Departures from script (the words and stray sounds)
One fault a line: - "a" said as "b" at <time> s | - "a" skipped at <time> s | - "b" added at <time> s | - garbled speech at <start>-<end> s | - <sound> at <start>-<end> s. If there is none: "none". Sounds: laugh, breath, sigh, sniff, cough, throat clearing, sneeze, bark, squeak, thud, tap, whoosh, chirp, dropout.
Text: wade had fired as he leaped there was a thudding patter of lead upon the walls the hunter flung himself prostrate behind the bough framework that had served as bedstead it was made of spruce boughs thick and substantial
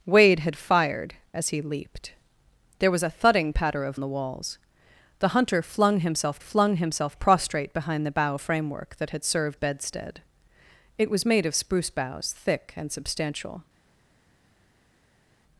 - "lead upon" skipped at 4.0 s
- "flung himself" added at 6.4 s
- "as" skipped at 9.6 s